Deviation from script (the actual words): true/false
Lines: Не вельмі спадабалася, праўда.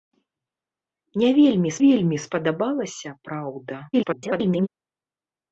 true